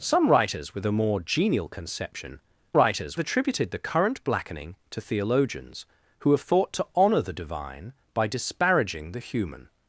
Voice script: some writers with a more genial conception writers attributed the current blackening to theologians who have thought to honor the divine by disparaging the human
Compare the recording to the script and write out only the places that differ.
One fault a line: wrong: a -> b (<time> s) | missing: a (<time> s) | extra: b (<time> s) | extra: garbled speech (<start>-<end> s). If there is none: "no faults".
no faults